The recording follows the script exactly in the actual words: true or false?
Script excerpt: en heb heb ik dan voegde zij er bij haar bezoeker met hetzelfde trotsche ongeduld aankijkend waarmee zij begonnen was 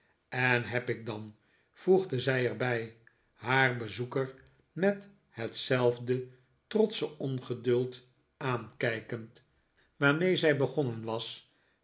false